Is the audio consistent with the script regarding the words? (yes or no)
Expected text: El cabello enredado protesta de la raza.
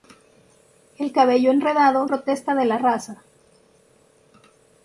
yes